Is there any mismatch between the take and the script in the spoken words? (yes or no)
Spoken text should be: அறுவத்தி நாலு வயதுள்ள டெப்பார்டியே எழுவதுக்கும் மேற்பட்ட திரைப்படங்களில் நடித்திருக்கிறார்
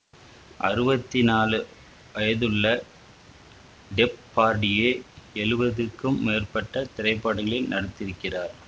no